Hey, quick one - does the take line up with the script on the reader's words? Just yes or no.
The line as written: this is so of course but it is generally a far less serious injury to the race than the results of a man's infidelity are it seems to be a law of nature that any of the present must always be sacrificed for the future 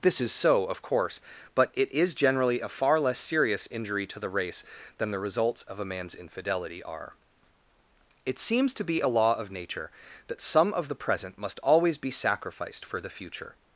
no